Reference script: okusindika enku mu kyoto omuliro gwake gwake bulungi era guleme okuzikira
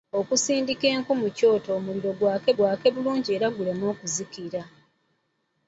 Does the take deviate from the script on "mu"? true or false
false